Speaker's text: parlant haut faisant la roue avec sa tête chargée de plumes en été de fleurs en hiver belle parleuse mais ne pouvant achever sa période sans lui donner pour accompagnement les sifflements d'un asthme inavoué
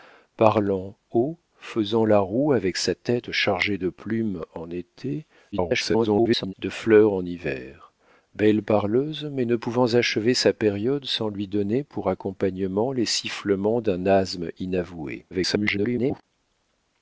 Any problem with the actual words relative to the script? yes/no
yes